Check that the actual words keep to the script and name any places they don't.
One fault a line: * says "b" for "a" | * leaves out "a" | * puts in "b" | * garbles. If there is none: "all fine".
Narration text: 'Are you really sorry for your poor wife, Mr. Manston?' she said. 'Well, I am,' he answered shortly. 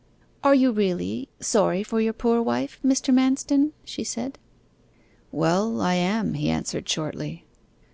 all fine